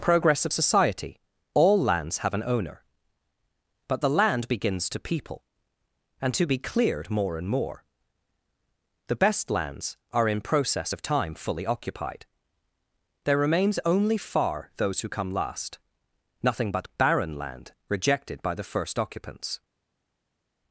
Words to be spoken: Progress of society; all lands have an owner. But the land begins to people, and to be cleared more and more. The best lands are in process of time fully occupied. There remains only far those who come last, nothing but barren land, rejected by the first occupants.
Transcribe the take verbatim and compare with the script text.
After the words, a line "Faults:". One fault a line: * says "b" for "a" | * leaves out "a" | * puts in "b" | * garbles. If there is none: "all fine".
Progress of society; all lands have an owner. But the land begins to people, and to be cleared more and more. The best lands are in process of time fully occupied. There remains only far those who come last, nothing but barren land, rejected by the first occupants.
Faults:
all fine